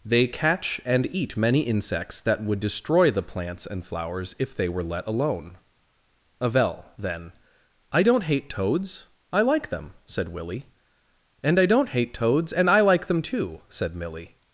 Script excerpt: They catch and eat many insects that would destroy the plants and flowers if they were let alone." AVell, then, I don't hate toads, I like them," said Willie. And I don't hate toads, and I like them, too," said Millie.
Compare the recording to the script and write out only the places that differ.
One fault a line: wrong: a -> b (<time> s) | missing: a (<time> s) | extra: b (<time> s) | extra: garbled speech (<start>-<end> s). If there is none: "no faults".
no faults